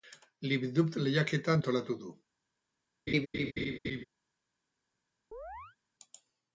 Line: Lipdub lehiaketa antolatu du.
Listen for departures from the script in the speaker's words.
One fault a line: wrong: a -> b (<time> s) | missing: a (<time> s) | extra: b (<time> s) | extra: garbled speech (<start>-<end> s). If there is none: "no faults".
no faults